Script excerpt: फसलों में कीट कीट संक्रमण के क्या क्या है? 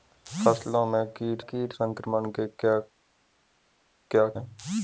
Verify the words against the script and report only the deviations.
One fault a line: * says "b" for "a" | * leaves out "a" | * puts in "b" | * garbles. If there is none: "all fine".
all fine